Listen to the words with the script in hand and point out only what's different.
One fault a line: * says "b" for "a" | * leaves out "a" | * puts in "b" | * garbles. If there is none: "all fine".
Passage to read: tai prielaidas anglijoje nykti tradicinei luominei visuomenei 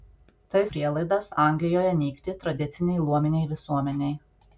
all fine